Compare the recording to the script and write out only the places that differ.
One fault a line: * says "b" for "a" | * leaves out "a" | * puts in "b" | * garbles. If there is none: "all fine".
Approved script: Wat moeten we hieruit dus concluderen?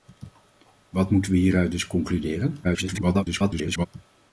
* garbles